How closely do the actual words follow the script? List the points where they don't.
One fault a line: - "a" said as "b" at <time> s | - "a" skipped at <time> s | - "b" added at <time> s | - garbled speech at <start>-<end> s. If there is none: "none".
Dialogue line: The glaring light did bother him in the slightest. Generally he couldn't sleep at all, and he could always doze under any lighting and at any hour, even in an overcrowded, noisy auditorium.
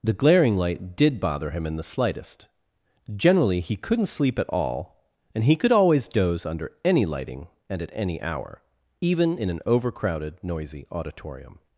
none